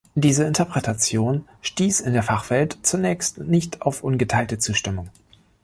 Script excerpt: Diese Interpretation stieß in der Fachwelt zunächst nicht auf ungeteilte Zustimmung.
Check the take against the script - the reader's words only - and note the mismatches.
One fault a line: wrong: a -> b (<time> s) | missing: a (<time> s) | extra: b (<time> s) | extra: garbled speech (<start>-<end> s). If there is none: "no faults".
no faults